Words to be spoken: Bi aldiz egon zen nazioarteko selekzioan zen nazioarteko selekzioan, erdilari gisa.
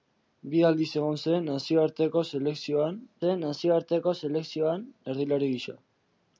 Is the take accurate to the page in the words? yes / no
yes